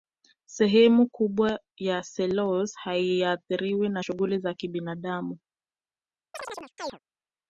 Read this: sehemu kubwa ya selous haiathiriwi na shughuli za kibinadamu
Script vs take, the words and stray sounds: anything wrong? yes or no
yes